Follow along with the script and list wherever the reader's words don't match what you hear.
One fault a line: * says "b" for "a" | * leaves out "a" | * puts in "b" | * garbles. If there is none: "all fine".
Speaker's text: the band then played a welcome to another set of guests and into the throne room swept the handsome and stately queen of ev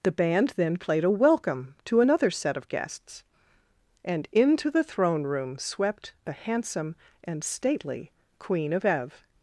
all fine